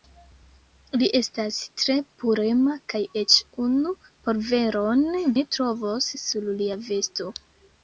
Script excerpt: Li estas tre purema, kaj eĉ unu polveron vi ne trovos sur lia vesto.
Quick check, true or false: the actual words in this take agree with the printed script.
false